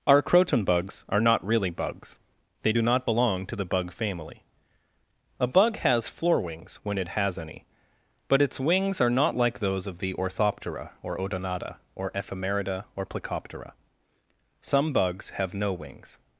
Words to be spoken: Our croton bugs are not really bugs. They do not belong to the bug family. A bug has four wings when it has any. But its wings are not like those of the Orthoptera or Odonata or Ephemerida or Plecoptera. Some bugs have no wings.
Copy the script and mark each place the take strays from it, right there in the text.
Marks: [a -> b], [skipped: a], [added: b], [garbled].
Our croton bugs are not really bugs. They do not belong to the bug family. A bug has [four -> floor] wings when it has any. But its wings are not like those of the Orthoptera or Odonata or Ephemerida or Plecoptera. Some bugs have no wings.